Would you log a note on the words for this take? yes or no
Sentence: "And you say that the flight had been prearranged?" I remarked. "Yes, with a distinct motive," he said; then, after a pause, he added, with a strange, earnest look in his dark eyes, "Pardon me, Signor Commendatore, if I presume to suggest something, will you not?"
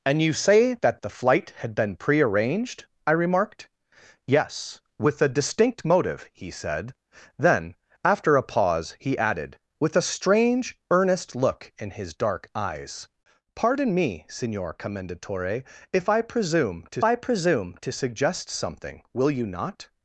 yes